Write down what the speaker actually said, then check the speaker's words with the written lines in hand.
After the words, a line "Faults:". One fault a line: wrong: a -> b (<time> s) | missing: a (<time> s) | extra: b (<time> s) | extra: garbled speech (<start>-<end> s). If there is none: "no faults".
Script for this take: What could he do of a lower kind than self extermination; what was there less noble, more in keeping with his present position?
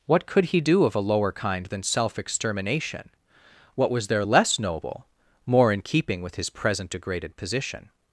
What could he do of a lower kind than self extermination; what was there less noble, more in keeping with his present degraded position?
Faults:
extra: degraded (6.9 s)